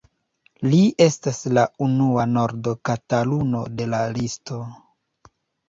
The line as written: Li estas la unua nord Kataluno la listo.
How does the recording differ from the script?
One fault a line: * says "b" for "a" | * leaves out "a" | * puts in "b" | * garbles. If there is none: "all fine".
* puts in "de"